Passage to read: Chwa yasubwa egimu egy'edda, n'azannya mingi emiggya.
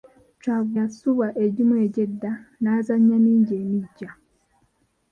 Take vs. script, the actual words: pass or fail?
pass